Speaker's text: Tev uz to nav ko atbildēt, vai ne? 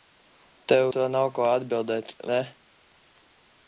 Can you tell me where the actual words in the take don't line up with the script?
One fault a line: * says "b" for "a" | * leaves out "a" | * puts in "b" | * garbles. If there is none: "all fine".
* leaves out "uz"
* leaves out "vai"